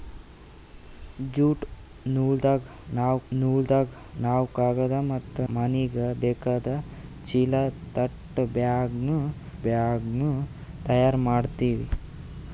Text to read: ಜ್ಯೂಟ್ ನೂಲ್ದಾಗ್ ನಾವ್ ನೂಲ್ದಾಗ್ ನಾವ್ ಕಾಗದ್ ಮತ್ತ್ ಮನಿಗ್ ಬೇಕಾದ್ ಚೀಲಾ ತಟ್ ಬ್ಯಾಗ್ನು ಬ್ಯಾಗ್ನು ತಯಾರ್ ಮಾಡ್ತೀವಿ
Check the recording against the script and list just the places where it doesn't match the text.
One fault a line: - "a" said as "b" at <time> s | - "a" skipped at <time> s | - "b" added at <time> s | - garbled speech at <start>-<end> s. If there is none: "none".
none